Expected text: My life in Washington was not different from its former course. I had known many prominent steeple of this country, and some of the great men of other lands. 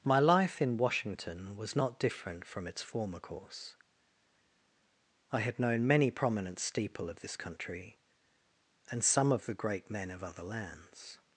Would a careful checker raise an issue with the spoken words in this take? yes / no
no